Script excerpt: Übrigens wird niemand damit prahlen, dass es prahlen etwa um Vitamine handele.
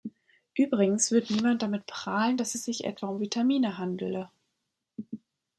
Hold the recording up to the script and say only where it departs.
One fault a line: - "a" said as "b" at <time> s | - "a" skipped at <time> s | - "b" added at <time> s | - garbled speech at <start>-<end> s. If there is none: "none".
- "prahlen" said as "sich" at 2.7 s